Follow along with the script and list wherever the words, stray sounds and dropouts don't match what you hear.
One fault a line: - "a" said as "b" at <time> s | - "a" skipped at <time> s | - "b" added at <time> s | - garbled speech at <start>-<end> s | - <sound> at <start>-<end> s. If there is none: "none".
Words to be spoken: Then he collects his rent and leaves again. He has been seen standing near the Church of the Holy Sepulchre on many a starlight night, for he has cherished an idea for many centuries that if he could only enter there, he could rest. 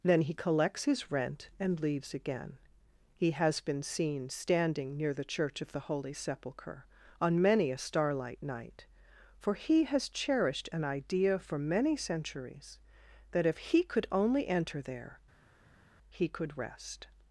none